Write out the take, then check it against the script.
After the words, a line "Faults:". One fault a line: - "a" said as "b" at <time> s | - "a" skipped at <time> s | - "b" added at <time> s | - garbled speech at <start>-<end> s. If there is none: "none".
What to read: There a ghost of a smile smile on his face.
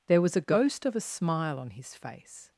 There was a ghost of a smile on his face.
Faults:
- "was" added at 0.2 s
- "smile" skipped at 1.6 s